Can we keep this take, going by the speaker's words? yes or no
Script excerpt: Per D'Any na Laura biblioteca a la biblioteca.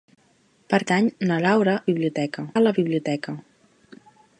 yes